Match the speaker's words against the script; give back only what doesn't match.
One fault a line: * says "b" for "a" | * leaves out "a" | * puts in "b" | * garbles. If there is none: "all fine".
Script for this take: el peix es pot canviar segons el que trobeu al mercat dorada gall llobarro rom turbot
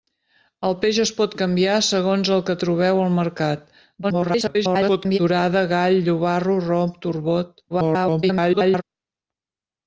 * garbles
* garbles